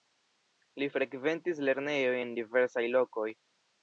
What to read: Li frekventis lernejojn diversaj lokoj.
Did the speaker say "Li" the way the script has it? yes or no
yes